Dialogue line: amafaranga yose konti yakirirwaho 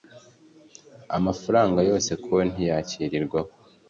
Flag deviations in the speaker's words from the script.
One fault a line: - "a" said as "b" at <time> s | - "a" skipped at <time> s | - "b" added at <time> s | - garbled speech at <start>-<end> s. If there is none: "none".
none